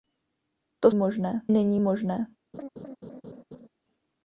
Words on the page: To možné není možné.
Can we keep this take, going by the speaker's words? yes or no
yes